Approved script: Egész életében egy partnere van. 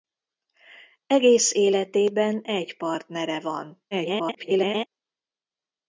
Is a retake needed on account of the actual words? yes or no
yes